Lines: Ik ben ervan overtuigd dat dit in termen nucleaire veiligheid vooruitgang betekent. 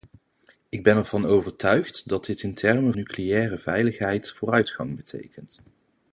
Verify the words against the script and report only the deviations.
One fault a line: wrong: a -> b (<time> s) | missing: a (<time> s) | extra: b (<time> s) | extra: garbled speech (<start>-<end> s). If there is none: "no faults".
no faults